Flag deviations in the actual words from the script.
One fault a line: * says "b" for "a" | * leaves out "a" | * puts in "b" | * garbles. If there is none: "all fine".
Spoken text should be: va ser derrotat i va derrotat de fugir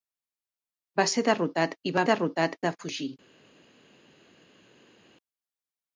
all fine